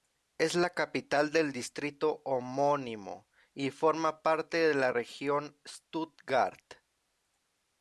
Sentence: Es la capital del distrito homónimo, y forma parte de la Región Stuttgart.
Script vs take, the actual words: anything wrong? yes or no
no